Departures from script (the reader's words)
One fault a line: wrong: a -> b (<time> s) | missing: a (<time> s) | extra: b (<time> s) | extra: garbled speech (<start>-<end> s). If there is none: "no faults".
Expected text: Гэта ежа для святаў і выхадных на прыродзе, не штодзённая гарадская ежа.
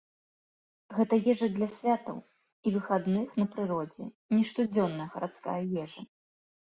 no faults